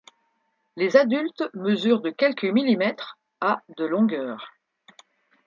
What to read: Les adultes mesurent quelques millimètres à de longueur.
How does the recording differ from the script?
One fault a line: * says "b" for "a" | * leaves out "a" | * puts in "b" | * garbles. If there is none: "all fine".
* puts in "de"